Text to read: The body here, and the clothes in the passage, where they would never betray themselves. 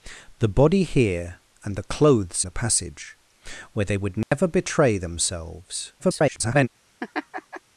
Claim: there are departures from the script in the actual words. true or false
true